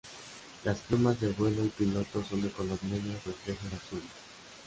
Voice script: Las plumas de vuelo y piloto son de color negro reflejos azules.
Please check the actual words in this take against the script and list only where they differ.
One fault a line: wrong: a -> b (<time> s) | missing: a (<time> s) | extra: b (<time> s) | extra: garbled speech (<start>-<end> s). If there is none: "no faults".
no faults